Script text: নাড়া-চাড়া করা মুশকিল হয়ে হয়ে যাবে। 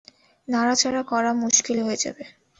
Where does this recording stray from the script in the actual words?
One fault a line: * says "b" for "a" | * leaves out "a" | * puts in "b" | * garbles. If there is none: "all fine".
* leaves out "হয়ে"